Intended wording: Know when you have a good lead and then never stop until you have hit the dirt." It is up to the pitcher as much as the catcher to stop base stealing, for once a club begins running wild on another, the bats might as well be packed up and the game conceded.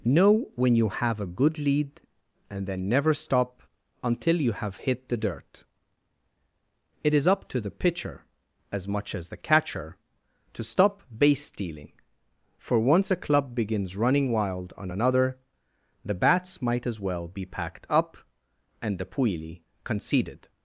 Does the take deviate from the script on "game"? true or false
true